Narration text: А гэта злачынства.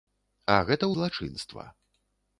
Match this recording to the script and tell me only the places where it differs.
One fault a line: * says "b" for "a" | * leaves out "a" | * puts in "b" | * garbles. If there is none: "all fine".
all fine